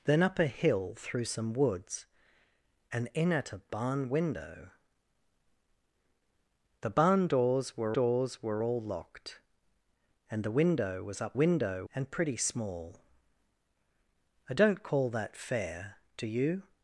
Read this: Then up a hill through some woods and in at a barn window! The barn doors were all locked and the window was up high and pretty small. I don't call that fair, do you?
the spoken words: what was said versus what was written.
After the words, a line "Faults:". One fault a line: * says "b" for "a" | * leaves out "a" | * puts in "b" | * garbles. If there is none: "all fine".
Then up a hill through some woods and in at a barn window! The barn doors were doors were all locked and the window was up window and pretty small. I don't call that fair, do you?
Faults:
* puts in "doors were"
* says "window" for "high"